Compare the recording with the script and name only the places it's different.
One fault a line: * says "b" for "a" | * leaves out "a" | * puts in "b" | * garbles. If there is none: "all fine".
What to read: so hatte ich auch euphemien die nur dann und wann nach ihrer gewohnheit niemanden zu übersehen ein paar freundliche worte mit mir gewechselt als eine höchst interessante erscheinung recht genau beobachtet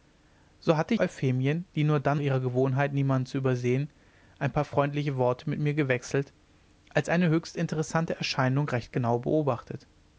* leaves out "ich auch"
* leaves out "und wann nach"